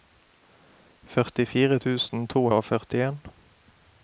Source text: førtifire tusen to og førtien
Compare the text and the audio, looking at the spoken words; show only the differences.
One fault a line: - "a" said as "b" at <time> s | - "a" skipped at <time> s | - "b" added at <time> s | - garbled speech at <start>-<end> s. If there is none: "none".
none